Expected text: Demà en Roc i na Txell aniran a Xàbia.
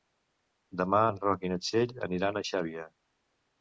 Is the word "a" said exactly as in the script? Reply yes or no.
yes